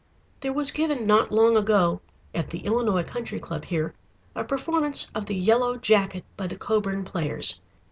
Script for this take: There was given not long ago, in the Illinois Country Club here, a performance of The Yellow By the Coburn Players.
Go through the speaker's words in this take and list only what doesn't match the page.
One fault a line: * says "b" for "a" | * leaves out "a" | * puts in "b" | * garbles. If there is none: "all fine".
* says "at" for "in"
* puts in "Jacket"